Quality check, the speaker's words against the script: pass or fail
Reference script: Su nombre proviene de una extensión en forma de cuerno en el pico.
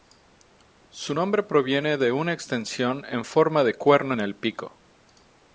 pass